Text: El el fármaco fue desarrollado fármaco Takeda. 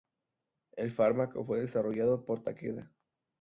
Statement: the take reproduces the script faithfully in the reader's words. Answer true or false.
false